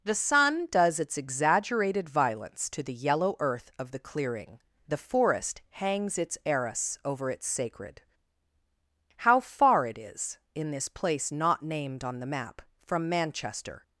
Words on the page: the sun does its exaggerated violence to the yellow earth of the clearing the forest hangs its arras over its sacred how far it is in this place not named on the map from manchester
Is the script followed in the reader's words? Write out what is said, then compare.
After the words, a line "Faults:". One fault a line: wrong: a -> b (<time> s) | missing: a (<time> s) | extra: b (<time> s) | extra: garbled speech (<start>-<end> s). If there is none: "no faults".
the sun does its exaggerated violence to the yellow earth of the clearing the forest hangs its arras over its sacred how far it is in this place not named on the map from manchester
Faults:
no faults